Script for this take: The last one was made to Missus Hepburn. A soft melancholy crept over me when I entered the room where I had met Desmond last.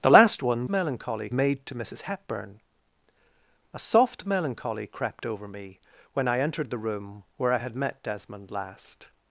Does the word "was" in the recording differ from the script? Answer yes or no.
yes